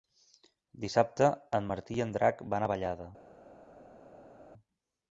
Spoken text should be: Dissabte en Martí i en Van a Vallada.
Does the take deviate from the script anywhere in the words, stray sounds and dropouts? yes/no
yes